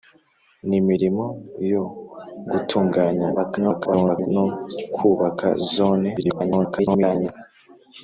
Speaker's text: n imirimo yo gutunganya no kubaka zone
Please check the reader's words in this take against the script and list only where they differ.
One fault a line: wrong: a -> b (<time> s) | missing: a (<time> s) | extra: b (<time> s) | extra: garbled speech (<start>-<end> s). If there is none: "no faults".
extra: garbled speech (3.3-4.3 s)
extra: garbled speech (6.2-7.3 s)